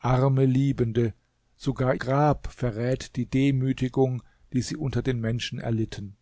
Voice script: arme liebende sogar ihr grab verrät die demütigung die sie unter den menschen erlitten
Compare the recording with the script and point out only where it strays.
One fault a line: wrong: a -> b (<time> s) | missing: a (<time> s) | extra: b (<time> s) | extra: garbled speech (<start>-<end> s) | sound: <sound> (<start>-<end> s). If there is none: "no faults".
missing: ihr (1.9 s)